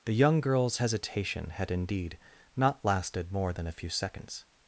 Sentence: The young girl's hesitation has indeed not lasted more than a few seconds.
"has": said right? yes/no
no